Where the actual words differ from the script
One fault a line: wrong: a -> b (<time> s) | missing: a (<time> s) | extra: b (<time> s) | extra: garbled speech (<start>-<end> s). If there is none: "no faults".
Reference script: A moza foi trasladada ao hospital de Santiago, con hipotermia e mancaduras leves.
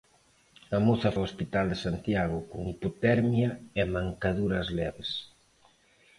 missing: foi trasladada (1.1 s)